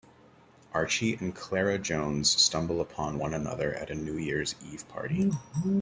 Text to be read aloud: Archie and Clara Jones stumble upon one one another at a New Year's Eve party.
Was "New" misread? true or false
false